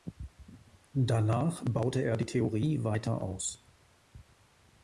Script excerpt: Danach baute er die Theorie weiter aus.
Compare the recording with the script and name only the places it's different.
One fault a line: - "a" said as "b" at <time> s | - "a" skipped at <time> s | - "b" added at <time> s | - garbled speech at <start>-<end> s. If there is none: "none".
none